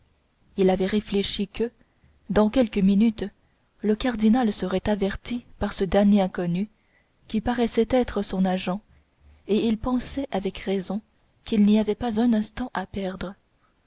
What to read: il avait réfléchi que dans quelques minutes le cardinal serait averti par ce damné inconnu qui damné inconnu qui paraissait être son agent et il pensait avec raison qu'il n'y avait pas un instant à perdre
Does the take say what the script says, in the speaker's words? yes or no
no